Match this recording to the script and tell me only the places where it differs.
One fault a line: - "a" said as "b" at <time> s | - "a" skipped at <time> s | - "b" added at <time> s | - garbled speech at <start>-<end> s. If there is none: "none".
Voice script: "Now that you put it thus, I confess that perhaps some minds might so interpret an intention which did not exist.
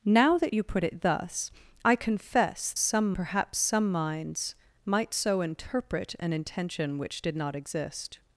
- "that" said as "some" at 2.8 s